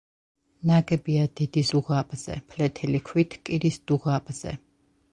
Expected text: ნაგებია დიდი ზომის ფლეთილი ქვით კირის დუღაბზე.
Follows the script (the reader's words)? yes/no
no